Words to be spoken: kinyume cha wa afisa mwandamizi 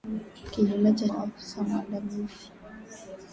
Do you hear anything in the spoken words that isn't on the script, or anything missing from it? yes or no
no